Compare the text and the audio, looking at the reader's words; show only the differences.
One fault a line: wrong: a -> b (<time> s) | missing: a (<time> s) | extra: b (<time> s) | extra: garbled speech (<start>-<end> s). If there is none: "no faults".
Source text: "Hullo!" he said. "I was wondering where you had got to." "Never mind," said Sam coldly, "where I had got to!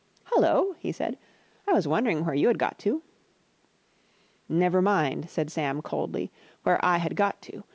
no faults